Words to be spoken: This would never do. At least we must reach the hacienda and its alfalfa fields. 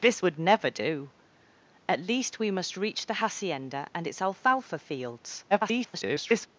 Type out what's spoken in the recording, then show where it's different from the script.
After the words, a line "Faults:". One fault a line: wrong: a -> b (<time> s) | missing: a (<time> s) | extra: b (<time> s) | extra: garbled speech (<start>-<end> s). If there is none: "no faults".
This would never do. At least we must reach the hacienda and its alfalfa fields. [garbled]
Faults:
extra: garbled speech (5.5-6.5 s)